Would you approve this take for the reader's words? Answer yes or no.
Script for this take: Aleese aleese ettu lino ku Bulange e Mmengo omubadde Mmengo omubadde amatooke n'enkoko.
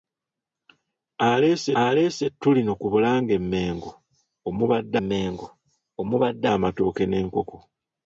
yes